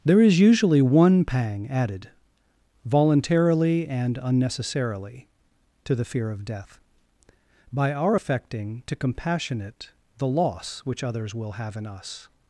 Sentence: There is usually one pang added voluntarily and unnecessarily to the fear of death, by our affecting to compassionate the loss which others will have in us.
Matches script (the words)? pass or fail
pass